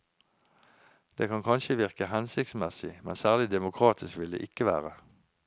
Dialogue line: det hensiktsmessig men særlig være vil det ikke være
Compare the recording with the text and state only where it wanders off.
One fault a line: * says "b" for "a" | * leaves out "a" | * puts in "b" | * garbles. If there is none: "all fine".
* puts in "kan kanskje virke"
* says "demokratisk" for "være"